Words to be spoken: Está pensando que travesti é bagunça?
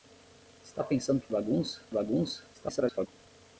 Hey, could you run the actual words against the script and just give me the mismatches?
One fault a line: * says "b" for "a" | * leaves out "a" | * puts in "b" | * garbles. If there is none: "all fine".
* says "bagunça" for "travesti"
* garbles